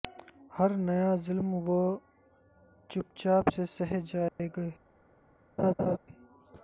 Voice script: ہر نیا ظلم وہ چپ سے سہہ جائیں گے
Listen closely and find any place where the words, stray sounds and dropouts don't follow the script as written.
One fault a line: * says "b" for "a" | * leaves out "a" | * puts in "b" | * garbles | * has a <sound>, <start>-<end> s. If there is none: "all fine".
* puts in "چاپ"
* has a dropout, 4.3-4.4 s
* has a laugh, 5.6-6.0 s